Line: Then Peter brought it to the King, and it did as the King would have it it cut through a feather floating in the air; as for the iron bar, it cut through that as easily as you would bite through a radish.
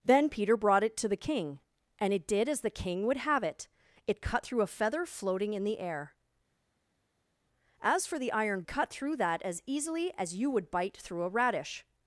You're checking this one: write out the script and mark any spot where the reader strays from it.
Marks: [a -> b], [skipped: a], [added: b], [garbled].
Then Peter brought it to the King, and it did as the King would have it it cut through a feather floating in the air; as for the iron [skipped: bar, it] cut through that as easily as you would bite through a radish.